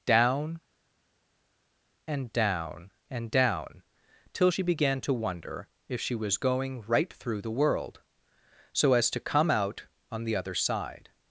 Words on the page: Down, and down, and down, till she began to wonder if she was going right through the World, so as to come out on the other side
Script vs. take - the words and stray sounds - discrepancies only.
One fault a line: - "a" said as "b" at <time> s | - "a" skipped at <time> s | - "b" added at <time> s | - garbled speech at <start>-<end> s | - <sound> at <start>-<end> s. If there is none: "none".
none